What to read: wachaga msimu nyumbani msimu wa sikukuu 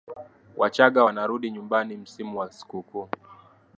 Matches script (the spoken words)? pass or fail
fail